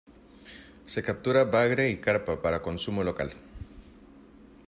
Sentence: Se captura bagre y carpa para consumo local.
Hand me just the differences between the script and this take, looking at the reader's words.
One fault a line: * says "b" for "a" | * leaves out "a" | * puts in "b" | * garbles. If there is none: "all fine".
all fine